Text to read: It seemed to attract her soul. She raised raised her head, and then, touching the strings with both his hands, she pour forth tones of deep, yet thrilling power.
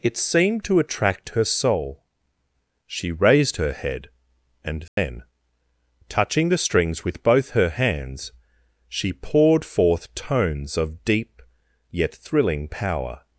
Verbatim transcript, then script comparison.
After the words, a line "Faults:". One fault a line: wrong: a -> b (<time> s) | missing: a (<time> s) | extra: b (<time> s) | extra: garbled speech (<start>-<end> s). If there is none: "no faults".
It seemed to attract her soul. She raised her head, and then, touching the strings with both her hands, she poured forth tones of deep, yet thrilling power.
Faults:
missing: raised (3.6 s)
wrong: his -> her (7.5 s)
wrong: pour -> poured (9.1 s)